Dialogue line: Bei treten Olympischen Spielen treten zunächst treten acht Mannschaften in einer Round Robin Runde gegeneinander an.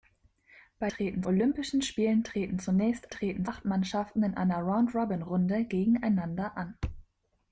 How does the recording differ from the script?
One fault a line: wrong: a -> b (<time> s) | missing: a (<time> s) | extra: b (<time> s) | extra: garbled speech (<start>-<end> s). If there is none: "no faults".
no faults